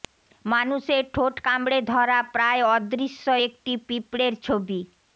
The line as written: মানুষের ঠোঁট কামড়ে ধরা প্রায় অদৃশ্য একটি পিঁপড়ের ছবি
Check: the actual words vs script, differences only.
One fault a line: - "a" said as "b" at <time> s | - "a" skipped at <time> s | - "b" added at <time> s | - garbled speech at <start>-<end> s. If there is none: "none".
none